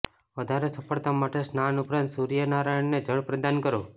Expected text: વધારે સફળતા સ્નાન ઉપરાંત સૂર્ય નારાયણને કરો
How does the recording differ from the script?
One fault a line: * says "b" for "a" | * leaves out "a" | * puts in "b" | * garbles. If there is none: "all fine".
* puts in "માટે"
* puts in "જળ પ્રદાન"